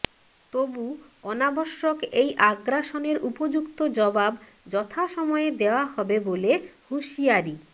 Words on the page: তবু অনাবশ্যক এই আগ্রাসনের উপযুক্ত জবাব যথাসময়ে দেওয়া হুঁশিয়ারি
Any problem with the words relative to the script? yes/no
yes